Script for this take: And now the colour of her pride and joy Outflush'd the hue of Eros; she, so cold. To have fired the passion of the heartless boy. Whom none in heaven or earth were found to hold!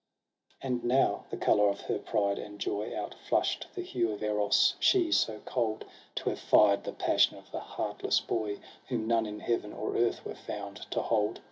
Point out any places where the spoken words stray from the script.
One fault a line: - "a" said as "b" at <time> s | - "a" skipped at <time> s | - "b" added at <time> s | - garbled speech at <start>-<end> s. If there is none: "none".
none